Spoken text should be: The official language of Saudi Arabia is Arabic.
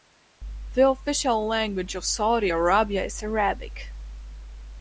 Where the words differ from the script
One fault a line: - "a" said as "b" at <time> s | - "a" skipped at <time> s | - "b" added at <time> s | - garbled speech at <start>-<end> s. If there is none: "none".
none